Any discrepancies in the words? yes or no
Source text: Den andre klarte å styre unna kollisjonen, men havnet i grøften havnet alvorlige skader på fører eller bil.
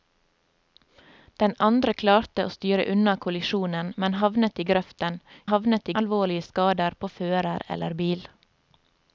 no